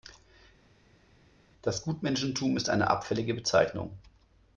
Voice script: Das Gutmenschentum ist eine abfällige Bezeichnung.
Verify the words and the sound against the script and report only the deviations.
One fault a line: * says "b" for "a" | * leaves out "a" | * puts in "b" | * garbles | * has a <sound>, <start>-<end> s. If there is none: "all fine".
all fine